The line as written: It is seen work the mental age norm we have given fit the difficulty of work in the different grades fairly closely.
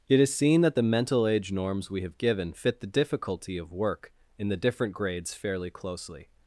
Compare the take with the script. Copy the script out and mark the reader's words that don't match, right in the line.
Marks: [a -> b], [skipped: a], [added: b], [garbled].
It is seen [work -> that] the mental age [norm -> norms] we have given fit the difficulty of work in the different grades fairly closely.